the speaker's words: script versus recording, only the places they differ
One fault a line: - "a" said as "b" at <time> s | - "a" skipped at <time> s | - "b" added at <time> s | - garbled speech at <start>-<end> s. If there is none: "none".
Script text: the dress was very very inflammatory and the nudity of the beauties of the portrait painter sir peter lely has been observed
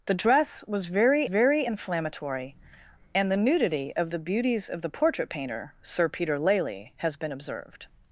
none